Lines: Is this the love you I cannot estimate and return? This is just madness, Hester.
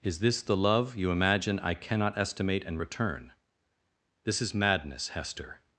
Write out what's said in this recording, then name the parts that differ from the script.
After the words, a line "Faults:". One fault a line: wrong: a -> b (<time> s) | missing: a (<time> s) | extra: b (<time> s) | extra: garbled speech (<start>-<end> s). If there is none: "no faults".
Is this the love you imagine I cannot estimate and return? This is madness, Hester.
Faults:
extra: imagine (1.1 s)
missing: just (4.5 s)